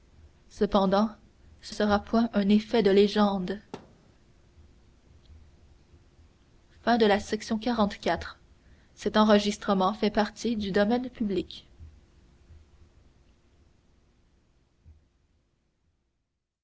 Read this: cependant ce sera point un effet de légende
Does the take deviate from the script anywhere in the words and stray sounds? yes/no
yes